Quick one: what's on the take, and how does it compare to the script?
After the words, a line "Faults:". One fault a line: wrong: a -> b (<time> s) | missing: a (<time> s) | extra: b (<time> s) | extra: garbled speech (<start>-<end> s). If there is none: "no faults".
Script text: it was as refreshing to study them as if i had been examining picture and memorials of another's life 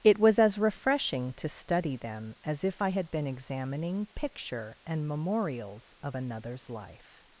it was as refreshing to study them as if i had been examining picture and memorials of another's life
Faults:
no faults